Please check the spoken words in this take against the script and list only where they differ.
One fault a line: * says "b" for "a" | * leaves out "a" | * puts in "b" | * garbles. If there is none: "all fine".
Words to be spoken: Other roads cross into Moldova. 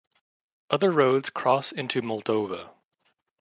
all fine